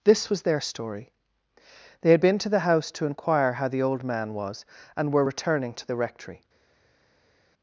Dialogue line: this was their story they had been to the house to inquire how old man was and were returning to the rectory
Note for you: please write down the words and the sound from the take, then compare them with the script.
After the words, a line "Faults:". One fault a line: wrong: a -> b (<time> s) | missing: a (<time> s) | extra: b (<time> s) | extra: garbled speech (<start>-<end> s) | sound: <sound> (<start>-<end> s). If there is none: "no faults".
this was their story they had been to the house to inquire how the old man was and were returning to the rectory
Faults:
extra: the (3.7 s)